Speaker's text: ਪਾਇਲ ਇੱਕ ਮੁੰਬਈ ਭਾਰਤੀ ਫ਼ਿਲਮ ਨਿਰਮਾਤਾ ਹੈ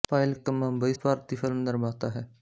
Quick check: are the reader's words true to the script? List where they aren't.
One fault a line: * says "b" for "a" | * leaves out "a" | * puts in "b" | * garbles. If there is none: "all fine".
all fine